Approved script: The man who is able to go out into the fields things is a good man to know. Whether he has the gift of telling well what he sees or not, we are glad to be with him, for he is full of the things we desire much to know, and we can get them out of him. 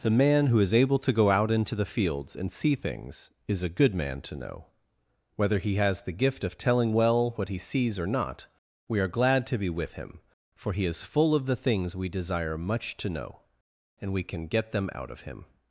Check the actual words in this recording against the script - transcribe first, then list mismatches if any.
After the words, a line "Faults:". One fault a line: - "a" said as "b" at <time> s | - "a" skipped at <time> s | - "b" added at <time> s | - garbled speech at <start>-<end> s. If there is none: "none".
The man who is able to go out into the fields and see things is a good man to know. Whether he has the gift of telling well what he sees or not, we are glad to be with him, for he is full of the things we desire much to know, and we can get them out of him.
Faults:
- "and see" added at 2.4 s